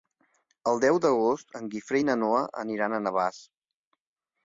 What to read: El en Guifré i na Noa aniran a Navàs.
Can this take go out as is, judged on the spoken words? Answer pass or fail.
fail